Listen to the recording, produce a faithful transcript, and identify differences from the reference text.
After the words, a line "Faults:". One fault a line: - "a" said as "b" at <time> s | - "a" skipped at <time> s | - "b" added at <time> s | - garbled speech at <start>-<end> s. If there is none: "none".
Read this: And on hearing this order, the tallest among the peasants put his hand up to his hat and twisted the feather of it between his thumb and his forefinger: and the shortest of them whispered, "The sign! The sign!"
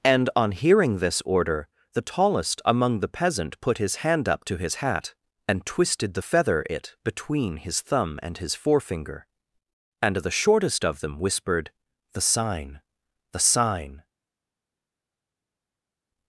And on hearing this order, the tallest among the peasant put his hand up to his hat and twisted the feather it between his thumb and his forefinger: and the shortest of them whispered, "The sign! The sign!"
Faults:
- "peasants" said as "peasant" at 3.1 s
- "of" skipped at 6.6 s